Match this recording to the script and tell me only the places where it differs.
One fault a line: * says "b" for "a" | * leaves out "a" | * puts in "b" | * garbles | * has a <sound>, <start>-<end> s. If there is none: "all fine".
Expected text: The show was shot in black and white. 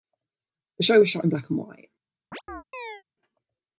* has a chirp, 2.3-3.0 s